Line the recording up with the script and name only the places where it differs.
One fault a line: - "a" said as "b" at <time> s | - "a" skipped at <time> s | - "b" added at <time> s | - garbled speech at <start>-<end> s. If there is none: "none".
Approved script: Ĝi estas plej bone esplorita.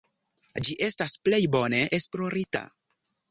none